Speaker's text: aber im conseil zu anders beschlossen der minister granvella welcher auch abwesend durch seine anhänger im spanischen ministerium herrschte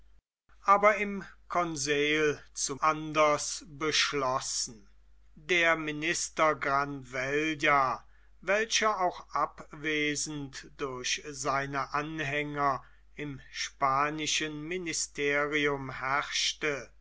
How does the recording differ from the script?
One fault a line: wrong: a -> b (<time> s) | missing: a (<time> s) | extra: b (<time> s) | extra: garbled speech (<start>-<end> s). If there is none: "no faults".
no faults